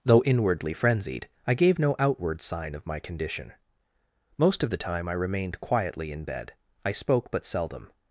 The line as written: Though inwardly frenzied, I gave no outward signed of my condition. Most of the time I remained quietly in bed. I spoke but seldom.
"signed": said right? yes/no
no